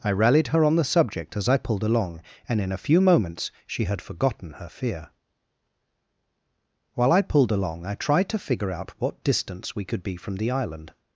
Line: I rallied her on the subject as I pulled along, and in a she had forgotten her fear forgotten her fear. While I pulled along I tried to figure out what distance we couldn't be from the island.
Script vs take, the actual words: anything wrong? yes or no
yes